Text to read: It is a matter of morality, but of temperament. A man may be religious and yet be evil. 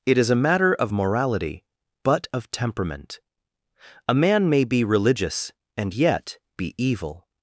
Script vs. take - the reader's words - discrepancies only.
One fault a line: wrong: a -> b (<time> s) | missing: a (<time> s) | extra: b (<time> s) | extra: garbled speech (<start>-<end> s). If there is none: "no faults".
no faults